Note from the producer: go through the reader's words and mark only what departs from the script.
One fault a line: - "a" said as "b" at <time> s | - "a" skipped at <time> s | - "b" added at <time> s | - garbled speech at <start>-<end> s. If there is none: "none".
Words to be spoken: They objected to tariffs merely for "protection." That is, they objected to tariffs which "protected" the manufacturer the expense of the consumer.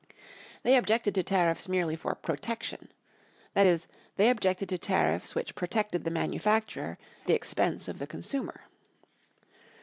none